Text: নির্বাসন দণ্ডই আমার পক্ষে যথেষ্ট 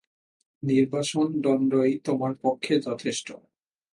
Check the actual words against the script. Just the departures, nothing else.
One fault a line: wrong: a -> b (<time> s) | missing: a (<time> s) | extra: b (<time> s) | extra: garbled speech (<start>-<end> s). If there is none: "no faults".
wrong: আমার -> তোমার (2.1 s)